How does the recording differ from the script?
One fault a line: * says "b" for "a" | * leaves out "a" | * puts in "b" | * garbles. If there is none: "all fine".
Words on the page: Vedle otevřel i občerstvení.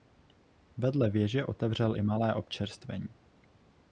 * puts in "věže"
* puts in "malé"